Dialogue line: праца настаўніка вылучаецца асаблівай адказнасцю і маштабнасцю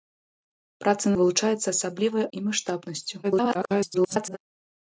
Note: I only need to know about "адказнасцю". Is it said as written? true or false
false